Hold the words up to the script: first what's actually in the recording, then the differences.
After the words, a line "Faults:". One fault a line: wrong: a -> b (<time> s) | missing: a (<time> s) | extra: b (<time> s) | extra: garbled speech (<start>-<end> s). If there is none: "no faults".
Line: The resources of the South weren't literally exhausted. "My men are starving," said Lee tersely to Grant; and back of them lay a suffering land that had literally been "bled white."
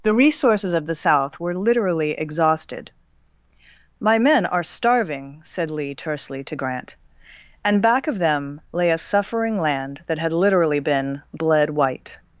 The resources of the South were literally exhausted. "My men are starving," said Lee tersely to Grant; and back of them lay a suffering land that had literally been "bled white."
Faults:
wrong: weren't -> were (1.4 s)